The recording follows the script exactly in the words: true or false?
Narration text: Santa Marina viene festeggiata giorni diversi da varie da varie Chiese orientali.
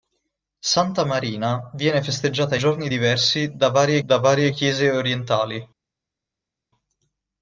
true